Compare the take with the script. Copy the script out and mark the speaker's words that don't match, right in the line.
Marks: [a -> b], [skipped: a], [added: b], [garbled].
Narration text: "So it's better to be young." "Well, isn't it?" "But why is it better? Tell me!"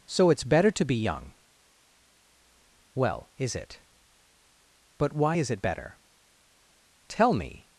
"So it's better to be young." "Well, [isn't -> is] it?" "But why is it better? Tell me!"